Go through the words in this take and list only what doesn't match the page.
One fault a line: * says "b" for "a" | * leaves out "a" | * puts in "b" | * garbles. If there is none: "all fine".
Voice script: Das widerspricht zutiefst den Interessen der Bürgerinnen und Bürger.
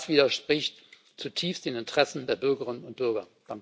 all fine